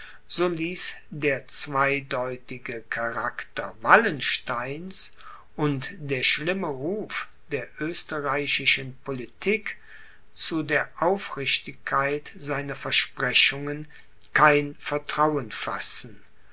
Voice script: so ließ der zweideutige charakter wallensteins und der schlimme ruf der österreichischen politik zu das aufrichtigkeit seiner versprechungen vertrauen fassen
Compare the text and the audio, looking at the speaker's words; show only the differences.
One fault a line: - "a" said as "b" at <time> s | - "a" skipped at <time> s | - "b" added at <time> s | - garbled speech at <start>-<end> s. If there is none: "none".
- "das" said as "der" at 10.6 s
- "kein" added at 14.3 s